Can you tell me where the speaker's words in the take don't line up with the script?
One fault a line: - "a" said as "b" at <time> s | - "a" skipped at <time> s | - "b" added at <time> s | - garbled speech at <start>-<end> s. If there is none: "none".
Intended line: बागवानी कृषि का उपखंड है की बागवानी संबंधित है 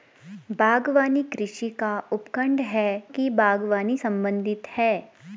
none